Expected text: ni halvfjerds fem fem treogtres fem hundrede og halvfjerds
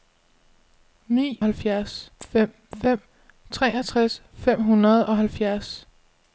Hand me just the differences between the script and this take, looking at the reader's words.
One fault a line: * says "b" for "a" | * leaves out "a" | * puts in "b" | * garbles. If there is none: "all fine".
all fine